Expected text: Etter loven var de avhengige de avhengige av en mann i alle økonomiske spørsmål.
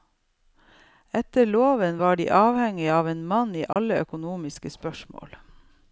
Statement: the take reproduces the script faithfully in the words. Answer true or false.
false